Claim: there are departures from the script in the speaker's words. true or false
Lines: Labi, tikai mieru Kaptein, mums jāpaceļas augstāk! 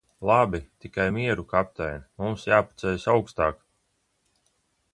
false